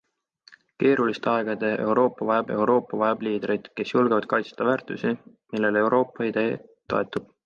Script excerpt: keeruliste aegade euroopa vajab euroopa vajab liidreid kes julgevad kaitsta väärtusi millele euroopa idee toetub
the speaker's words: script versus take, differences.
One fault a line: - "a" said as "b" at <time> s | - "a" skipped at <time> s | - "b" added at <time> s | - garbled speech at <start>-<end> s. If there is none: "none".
none